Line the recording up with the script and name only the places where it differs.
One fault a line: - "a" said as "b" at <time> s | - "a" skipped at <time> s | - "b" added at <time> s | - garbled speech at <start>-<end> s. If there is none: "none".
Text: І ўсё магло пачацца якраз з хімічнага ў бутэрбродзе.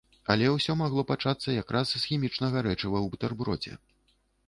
- "І" said as "Але" at 0.3 s
- "рэчыва" added at 2.7 s